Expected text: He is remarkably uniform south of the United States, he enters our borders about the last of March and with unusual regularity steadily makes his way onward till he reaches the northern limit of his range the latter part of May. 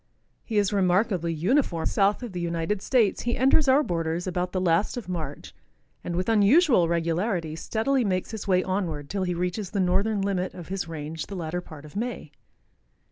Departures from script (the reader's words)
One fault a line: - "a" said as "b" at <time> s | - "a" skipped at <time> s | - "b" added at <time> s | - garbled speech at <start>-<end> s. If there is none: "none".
none